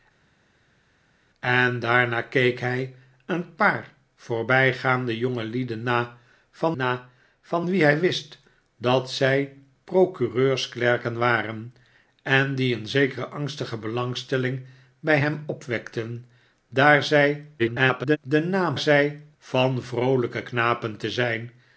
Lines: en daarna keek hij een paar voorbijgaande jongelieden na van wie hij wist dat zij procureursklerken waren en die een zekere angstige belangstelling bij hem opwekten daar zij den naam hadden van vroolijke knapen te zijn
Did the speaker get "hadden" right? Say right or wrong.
wrong